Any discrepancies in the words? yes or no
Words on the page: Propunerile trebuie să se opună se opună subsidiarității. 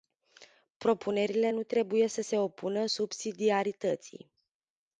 yes